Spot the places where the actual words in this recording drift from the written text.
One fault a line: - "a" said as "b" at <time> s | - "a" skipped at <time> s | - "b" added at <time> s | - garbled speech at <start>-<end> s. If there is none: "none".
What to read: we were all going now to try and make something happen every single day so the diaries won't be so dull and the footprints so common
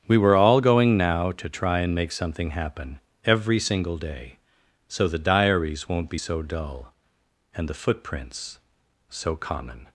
none